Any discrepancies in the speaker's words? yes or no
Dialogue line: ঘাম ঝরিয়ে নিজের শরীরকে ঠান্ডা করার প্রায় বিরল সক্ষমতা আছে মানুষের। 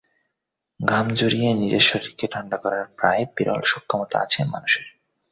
no